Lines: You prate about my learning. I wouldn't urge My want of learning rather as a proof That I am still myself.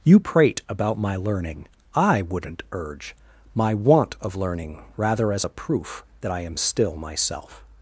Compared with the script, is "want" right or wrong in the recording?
right